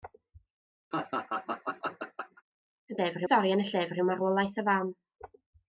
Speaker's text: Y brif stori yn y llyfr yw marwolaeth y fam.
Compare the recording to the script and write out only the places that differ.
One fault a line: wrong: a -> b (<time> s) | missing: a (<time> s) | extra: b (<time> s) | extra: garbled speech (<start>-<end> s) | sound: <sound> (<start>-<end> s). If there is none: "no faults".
sound: laugh (0.9-2.4 s)
wrong: brif -> llyfr (3.0 s)